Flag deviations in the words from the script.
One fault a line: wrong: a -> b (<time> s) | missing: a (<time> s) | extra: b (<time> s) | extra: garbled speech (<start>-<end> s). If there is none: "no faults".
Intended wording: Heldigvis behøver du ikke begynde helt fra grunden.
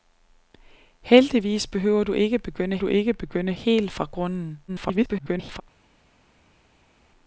extra: du ikke begynde (2.8 s)
extra: garbled speech (4.7-5.6 s)